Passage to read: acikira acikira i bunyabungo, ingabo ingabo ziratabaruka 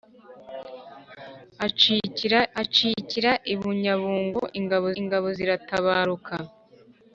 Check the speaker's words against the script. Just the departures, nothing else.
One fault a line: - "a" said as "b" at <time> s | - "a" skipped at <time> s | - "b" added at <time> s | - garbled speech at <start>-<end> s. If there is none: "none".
none